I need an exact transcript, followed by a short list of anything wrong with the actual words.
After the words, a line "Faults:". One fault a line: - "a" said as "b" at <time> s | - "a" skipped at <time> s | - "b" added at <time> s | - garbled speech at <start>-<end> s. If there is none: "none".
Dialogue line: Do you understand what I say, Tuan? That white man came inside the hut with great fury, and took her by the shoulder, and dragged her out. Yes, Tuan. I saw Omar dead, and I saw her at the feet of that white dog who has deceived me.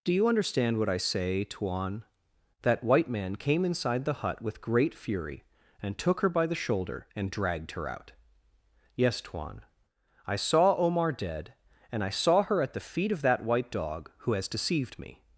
Do you understand what I say, Tuan? That white man came inside the hut with great fury, and took her by the shoulder, and dragged her out. Yes, Tuan. I saw Omar dead, and I saw her at the feet of that white dog who has deceived me.
Faults:
none